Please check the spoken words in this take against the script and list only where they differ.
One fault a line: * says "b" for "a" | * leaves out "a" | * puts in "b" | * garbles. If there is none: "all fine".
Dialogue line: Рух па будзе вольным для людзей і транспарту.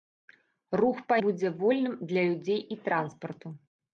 all fine